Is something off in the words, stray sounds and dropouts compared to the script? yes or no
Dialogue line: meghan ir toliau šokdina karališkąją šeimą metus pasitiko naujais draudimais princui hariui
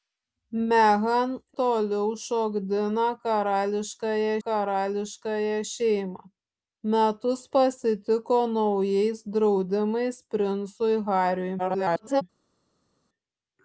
yes